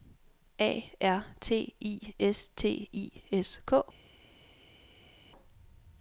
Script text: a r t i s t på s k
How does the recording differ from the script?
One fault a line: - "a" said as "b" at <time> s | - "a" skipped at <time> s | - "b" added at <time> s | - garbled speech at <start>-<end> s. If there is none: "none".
- "på" said as "i" at 2.9 s